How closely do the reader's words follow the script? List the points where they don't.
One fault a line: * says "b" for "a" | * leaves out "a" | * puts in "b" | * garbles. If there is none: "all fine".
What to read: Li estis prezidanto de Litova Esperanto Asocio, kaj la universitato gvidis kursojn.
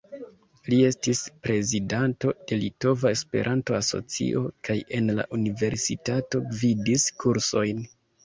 * puts in "en"